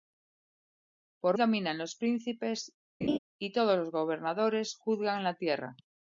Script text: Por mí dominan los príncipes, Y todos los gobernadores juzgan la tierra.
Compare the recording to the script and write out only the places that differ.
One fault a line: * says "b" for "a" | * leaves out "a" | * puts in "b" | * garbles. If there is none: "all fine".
* leaves out "mí"